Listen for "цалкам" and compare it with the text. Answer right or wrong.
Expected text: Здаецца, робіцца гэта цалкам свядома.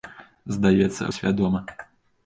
wrong